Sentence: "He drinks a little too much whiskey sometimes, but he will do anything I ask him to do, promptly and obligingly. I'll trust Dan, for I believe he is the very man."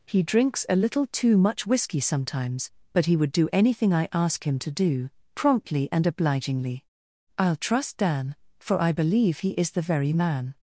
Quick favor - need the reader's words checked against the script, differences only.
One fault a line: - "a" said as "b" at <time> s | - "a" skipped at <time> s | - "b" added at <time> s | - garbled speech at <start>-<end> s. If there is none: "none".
- "will" said as "would" at 3.1 s